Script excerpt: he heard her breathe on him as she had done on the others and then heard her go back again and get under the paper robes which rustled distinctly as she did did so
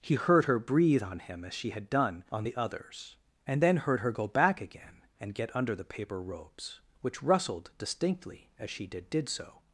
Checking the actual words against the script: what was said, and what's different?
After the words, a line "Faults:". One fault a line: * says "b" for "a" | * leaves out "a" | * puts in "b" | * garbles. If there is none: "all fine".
he heard her breathe on him as she had done on the others and then heard her go back again and get under the paper robes which rustled distinctly as she did did so
Faults:
all fine